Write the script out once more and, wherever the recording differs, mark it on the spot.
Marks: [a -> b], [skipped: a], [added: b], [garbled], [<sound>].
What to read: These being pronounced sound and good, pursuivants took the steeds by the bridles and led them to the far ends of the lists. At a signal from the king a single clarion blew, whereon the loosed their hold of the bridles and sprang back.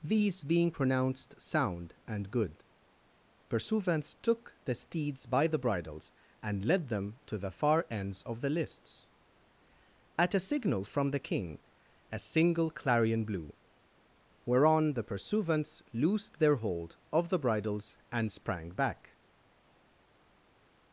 These being pronounced sound and good, pursuivants took the steeds by the bridles and led them to the far ends of the lists. At a signal from the king a single clarion blew, whereon the [added: pursuivants] loosed their hold of the bridles and sprang back.